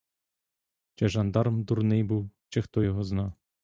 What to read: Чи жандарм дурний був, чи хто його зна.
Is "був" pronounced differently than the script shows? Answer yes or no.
no